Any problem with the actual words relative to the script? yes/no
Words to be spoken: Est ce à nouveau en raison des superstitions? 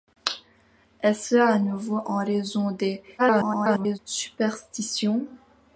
yes